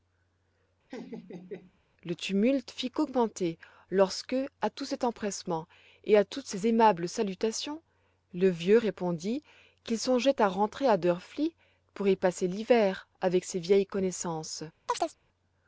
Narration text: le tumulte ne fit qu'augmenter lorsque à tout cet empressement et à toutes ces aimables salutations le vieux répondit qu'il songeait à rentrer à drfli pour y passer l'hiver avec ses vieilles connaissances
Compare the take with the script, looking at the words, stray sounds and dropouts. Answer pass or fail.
fail